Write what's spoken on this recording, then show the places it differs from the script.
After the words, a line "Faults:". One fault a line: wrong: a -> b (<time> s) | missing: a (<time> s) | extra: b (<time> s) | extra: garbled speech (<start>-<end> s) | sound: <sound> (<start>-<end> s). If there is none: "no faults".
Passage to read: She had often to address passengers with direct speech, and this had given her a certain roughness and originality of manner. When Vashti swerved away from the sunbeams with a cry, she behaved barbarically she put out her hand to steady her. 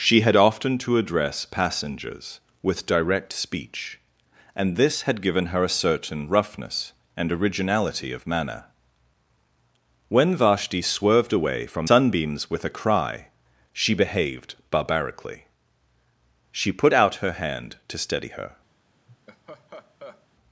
She had often to address passengers with direct speech, and this had given her a certain roughness and originality of manner. When Vashti swerved away from sunbeams with a cry, she behaved barbarically she put out her hand to steady her.
Faults:
missing: the (11.9 s)
sound: laugh (19.1-20.3 s)